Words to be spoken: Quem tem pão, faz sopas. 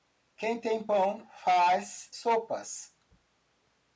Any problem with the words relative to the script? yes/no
no